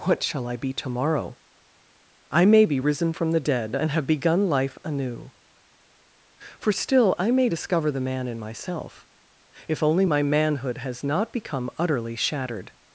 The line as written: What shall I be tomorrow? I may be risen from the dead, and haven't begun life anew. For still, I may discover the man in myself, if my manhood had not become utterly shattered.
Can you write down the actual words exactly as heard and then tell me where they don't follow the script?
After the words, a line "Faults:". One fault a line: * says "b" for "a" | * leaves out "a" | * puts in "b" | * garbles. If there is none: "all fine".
What shall I be tomorrow? I may be risen from the dead, and have begun life anew. For still, I may discover the man in myself, if only my manhood has not become utterly shattered.
Faults:
* says "have" for "haven't"
* puts in "only"
* says "has" for "had"